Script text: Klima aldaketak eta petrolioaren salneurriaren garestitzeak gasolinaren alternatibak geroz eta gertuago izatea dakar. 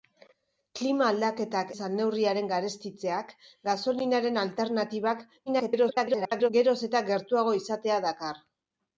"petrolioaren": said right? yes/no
no